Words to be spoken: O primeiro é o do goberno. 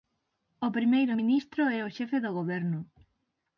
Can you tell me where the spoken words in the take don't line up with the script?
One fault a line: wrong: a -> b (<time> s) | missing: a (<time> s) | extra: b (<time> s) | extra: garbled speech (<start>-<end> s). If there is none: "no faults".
extra: ministro (1.2 s)
extra: xefe (2.0 s)